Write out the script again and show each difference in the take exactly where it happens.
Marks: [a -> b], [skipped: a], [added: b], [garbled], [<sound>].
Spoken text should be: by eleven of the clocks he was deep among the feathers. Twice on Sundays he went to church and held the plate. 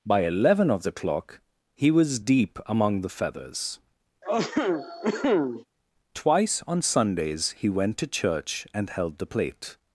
by eleven of the [clocks -> clock] he was deep among the feathers. [cough] Twice on Sundays he went to church and held the plate.